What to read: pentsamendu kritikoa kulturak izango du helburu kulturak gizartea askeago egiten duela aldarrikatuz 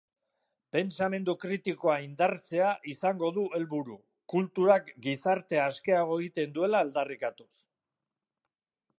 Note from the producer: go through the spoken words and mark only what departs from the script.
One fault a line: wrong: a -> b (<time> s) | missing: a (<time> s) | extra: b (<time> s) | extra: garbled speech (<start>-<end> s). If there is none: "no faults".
wrong: kulturak -> indartzea (2.0 s)